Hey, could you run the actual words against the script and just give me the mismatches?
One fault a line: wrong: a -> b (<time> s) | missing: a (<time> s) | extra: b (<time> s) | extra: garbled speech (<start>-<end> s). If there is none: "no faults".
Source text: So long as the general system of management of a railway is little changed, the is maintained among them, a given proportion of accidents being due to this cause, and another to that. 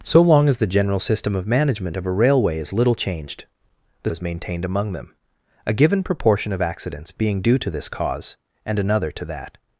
no faults